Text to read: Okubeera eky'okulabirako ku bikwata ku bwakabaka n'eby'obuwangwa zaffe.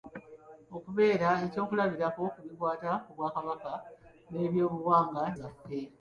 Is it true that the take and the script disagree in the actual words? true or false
false